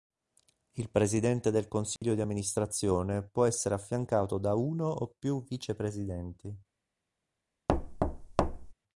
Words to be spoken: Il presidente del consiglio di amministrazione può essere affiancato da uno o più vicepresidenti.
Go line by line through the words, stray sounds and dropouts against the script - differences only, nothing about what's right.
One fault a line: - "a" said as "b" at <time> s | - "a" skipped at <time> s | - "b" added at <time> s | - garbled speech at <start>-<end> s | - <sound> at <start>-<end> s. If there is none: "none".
- dropout at 2.0-2.0 s
- thud at 7.7-8.7 s